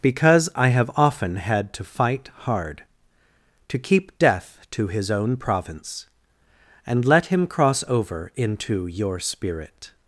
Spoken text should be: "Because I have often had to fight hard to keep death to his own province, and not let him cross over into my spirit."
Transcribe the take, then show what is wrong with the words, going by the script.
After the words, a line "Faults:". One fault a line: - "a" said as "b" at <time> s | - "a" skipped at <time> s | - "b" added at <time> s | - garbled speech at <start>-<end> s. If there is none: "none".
"Because I have often had to fight hard to keep death to his own province, and let him cross over into your spirit."
Faults:
- "not" skipped at 7.0 s
- "my" said as "your" at 8.9 s